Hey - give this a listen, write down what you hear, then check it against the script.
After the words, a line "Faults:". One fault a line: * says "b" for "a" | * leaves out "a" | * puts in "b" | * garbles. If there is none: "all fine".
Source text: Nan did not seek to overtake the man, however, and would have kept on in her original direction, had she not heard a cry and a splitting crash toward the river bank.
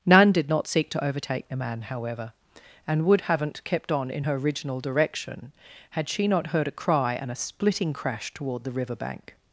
Nan did not seek to overtake the man, however, and would haven't kept on in her original direction, had she not heard a cry and a splitting crash toward the river bank.
Faults:
* says "haven't" for "have"